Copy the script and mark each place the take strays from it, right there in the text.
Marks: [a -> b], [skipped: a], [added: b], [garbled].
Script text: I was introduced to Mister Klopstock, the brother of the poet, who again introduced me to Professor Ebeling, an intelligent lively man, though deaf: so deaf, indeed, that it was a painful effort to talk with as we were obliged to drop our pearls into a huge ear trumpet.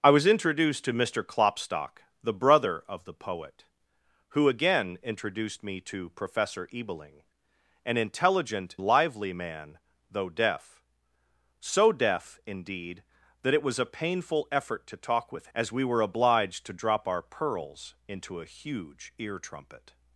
I was introduced to Mister Klopstock, the brother of the poet, who again introduced me to Professor Ebeling, an intelligent lively man, though deaf: so deaf, indeed, that it was a painful effort to talk with as we were obliged to drop our pearls into a huge ear trumpet.